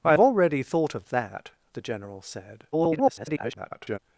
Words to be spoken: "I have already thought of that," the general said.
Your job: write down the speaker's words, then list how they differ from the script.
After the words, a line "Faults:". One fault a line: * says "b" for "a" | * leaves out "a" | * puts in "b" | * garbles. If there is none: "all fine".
"I already thought of that," the general said. [garbled]
Faults:
* leaves out "have"
* garbles